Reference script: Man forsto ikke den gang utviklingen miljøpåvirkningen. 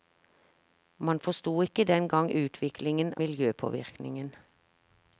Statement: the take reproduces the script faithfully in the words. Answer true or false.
true